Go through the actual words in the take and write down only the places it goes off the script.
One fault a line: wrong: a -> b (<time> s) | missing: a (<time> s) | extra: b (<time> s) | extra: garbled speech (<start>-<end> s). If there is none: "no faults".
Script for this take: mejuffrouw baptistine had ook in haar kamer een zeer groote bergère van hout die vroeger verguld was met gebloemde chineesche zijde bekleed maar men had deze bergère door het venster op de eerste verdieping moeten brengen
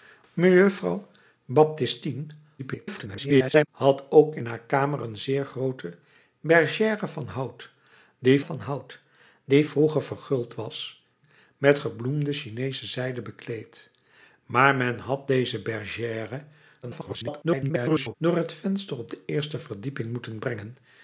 extra: garbled speech (2.6-3.7 s)
extra: van hout die (8.4 s)
extra: garbled speech (16.8-18.1 s)